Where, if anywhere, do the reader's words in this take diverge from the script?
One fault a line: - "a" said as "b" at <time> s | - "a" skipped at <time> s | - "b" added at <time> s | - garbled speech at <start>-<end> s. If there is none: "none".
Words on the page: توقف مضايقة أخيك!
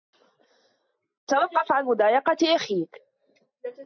- "عن" added at 1.7 s